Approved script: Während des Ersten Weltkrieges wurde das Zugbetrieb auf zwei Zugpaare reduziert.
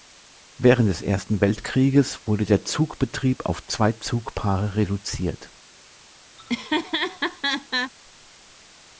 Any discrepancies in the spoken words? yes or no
yes